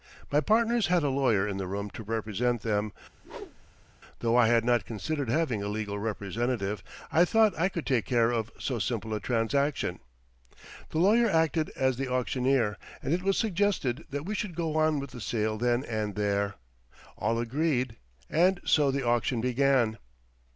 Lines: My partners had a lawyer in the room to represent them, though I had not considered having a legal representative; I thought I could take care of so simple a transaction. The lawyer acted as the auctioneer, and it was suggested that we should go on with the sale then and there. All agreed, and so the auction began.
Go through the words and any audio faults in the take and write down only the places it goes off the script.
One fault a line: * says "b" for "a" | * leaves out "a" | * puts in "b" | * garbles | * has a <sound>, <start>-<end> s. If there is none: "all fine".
* has a whoosh, 3.2-3.9 s